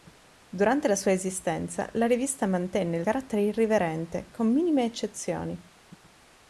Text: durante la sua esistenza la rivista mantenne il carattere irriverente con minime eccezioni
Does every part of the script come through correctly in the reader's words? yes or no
yes